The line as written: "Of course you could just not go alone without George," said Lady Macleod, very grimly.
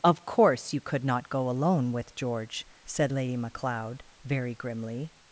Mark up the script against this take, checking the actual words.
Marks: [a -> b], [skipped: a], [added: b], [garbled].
"Of course you could [skipped: just] not go alone [without -> with] George," said Lady Macleod, very grimly.